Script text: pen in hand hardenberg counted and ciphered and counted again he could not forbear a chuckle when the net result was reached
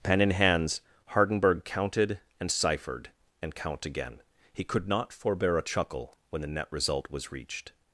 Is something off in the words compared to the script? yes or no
yes